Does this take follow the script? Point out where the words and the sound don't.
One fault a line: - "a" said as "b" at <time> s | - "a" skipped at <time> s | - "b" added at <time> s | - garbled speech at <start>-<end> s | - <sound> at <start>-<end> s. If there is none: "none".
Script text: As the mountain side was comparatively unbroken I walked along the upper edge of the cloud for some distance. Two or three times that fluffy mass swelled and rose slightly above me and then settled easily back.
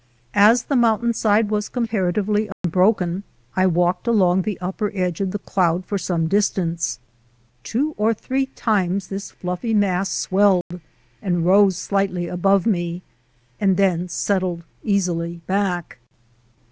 - dropout at 2.5-2.6 s
- "that" said as "this" at 9.1 s
- dropout at 10.6-10.7 s